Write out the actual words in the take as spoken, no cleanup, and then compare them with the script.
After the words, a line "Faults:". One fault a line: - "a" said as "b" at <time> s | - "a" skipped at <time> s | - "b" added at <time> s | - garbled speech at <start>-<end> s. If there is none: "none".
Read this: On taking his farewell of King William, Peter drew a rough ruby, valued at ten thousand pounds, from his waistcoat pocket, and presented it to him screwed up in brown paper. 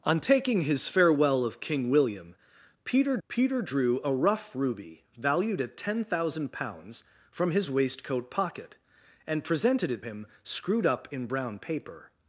On taking his farewell of King William, Peter Peter drew a rough ruby, valued at ten thousand pounds, from his waistcoat pocket, and presented it him screwed up in brown paper.
Faults:
- "Peter" added at 3.3 s
- "to" skipped at 10.0 s